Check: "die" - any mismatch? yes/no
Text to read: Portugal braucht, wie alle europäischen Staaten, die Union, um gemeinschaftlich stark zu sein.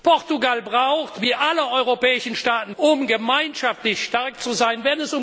yes